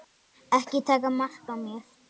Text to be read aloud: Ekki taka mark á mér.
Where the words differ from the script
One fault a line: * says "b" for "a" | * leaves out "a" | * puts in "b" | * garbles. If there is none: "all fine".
all fine